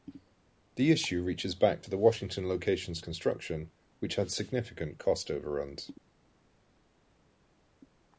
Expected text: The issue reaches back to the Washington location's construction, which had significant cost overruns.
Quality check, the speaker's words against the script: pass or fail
pass